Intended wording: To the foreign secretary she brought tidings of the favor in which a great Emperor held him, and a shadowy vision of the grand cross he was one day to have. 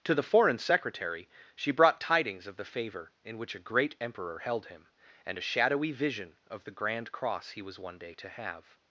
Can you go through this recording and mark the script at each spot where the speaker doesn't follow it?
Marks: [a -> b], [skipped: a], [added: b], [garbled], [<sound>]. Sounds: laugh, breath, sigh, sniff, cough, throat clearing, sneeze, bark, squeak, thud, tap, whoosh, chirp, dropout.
To the foreign secretary she brought tidings of the favor in which a great Emperor held him, and a shadowy vision of the grand cross he was one day to have.